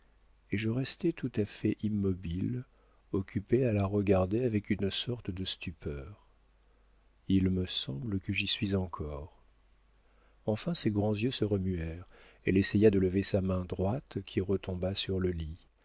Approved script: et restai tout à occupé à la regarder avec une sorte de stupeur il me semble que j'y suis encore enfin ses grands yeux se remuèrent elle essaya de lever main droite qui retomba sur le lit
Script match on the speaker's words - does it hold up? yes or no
no